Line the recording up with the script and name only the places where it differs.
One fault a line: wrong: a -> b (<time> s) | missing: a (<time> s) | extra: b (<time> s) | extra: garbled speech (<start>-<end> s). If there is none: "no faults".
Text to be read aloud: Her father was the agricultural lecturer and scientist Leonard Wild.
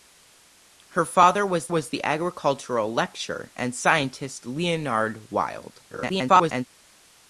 extra: was (1.7 s)
extra: garbled speech (5.9-6.7 s)